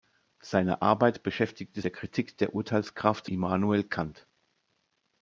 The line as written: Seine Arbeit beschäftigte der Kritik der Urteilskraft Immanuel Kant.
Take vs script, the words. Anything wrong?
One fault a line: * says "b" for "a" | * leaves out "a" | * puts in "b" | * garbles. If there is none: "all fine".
all fine